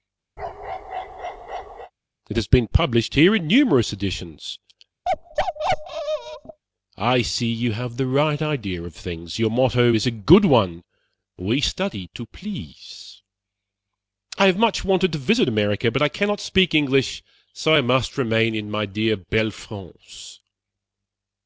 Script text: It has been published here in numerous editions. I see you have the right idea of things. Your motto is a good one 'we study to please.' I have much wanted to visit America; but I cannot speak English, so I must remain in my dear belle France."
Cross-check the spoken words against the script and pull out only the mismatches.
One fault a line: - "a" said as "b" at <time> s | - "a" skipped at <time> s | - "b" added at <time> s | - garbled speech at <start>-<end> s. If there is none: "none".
none